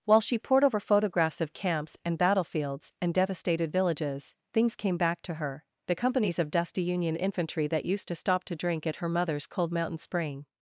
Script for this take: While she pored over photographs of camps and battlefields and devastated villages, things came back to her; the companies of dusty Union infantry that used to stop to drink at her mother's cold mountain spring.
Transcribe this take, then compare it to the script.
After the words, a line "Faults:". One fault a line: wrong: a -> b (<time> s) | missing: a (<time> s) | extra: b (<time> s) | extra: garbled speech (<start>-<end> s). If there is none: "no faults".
While she pored over photographs of camps and battlefields and devastated villages, things came back to her; the companies of dusty Union infantry that used to stop to drink at her mother's cold mountain spring.
Faults:
no faults